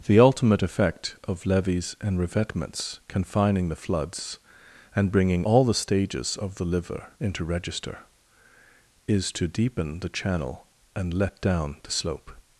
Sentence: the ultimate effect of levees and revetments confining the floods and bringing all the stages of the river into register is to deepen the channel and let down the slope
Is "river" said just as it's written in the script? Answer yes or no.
no